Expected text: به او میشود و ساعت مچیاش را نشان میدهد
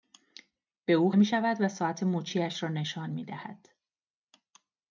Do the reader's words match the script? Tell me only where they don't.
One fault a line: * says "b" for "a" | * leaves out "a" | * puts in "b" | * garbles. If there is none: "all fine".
all fine